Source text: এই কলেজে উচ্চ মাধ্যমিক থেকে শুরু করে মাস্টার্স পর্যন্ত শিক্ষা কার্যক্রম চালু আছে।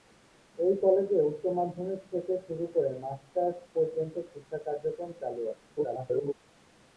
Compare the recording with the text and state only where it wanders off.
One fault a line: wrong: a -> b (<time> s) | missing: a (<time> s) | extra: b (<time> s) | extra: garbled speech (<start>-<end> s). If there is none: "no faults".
extra: garbled speech (5.8-6.3 s)